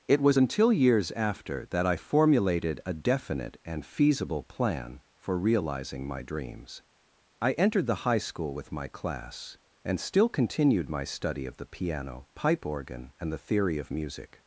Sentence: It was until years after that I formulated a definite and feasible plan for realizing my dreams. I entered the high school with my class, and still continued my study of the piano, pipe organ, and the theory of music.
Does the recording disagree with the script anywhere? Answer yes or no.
no